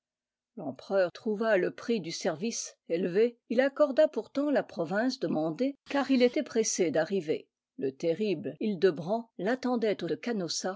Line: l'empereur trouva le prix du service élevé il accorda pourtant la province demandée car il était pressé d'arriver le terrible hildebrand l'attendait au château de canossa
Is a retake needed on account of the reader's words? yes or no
yes